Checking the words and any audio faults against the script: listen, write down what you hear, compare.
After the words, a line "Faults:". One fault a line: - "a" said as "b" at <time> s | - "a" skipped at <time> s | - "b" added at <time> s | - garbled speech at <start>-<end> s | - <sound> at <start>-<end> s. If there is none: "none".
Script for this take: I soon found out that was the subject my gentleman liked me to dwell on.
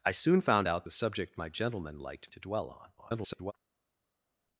I soon found out the subject my gentleman liked to dwell on. [garbled]
Faults:
- "that was" skipped at 0.9 s
- "me" skipped at 2.3 s
- garbled speech at 3.0-3.5 s